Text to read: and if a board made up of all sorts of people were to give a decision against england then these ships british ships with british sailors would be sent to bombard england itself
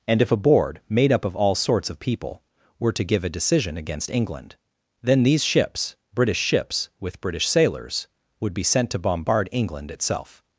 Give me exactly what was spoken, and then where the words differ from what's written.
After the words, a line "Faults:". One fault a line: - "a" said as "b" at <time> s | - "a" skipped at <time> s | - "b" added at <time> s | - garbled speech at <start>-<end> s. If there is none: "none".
and if a board made up of all sorts of people were to give a decision against england then these ships british ships with british sailors would be sent to bombard england itself
Faults:
none